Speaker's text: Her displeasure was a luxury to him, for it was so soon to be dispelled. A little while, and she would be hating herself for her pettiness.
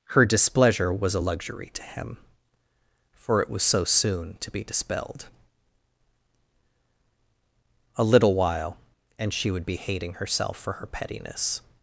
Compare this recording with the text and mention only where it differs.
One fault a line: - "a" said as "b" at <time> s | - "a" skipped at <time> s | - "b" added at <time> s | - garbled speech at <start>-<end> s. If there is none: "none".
none